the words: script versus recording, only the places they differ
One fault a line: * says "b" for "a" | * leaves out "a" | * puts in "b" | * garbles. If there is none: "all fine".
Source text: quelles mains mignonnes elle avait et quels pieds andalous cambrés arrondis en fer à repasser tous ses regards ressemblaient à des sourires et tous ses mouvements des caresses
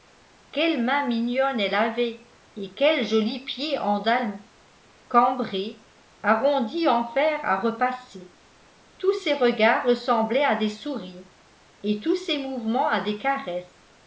* puts in "jolis"
* puts in "à"